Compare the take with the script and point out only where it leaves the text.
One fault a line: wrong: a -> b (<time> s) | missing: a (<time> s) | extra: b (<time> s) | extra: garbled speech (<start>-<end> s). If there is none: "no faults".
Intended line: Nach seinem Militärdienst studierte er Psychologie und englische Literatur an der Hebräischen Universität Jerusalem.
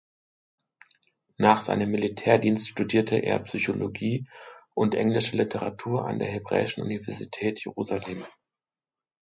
no faults